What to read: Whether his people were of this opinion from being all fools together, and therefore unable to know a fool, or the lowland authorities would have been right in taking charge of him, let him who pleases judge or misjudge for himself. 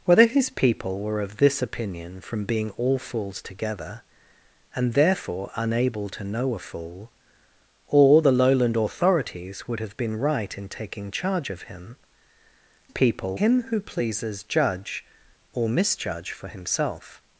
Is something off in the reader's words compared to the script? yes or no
yes